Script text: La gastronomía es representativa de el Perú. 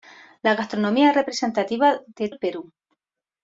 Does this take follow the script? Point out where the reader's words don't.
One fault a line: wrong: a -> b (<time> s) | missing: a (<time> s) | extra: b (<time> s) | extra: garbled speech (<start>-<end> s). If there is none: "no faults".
no faults